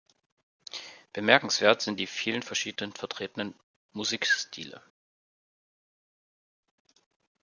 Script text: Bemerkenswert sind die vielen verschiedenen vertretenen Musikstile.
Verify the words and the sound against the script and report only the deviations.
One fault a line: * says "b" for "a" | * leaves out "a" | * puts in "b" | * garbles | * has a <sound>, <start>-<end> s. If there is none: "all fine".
all fine